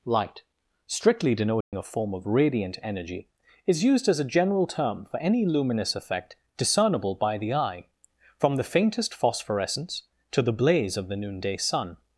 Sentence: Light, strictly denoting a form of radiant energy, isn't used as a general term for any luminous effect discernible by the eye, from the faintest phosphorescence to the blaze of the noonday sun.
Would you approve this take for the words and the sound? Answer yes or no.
no